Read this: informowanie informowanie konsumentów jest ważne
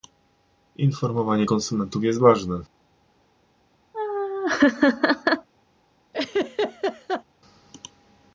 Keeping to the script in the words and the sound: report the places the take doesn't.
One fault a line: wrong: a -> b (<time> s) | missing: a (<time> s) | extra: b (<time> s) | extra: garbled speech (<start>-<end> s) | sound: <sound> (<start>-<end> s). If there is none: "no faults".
missing: informowanie (1.5 s)
sound: laugh (3.9-5.5 s)
sound: laugh (6.1-7.2 s)